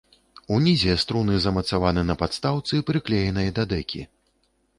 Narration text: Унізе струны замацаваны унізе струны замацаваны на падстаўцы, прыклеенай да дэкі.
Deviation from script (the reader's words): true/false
true